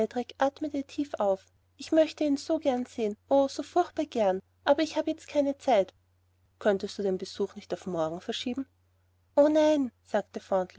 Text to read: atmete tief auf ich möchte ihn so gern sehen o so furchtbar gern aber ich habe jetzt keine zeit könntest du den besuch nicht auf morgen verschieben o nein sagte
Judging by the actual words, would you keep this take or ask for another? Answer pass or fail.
pass